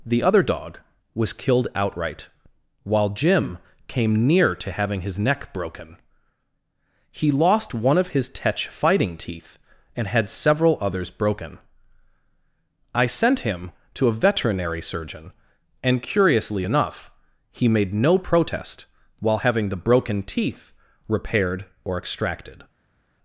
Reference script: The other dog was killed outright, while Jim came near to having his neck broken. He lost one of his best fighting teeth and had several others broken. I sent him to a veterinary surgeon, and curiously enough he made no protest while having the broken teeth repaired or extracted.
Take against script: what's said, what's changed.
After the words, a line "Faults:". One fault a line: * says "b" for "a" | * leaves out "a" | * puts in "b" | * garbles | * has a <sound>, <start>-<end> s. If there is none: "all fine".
The other dog was killed outright, while Jim came near to having his neck broken. He lost one of his tetch fighting teeth and had several others broken. I sent him to a veterinary surgeon, and curiously enough he made no protest while having the broken teeth repaired or extracted.
Faults:
* says "tetch" for "best"